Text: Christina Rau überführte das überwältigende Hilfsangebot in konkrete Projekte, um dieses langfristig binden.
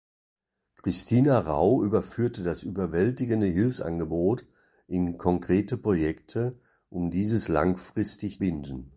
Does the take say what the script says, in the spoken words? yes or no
yes